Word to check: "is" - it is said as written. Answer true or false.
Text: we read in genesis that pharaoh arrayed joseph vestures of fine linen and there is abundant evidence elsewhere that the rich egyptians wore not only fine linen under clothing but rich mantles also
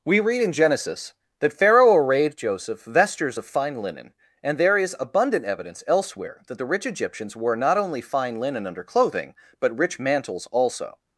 true